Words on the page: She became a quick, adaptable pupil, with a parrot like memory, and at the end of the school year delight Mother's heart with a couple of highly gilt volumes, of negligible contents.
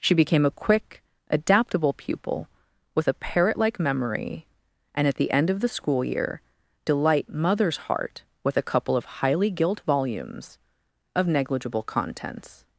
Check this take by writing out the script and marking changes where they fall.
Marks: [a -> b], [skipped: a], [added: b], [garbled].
She became a quick, adaptable pupil, with a parrot like memory, and at the end of the school year delight Mother's heart with a couple of highly gilt volumes, of negligible contents.